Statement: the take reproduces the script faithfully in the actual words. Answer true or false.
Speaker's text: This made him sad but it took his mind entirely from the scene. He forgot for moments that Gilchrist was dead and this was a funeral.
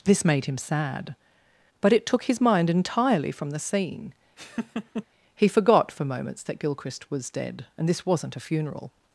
false